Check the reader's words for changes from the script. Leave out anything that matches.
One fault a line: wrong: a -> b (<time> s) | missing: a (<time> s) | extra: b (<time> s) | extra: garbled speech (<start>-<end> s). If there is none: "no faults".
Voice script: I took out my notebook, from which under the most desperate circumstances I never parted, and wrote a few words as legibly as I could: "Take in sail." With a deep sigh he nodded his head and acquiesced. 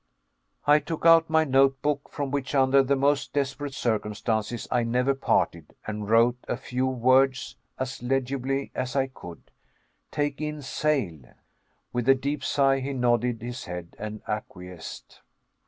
no faults